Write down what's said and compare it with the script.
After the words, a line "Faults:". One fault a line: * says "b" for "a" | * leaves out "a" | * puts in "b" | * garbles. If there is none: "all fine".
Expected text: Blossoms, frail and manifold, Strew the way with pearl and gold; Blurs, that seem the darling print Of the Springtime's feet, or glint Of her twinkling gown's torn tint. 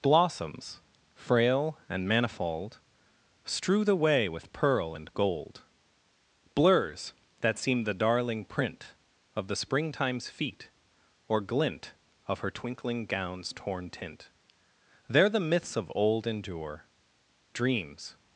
Blossoms, frail and manifold, Strew the way with pearl and gold; Blurs, that seem the darling print Of the Springtime's feet, or glint Of her twinkling gown's torn tint. There the myths of old endure: Dreams
Faults:
* puts in "There the myths of old endure Dreams"